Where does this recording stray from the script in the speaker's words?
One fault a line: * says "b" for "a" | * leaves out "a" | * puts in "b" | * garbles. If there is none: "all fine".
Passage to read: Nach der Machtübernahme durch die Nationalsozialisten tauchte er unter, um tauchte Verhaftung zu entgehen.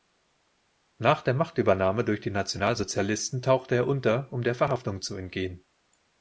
* says "der" for "tauchte"